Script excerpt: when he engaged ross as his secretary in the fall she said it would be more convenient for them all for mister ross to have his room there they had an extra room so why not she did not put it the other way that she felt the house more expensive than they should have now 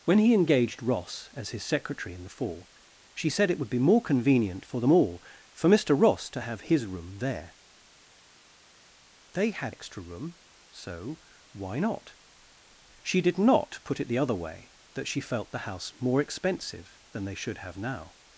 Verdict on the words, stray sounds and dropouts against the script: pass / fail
fail